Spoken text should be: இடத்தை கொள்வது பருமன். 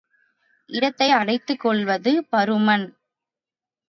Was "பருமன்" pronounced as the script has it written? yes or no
yes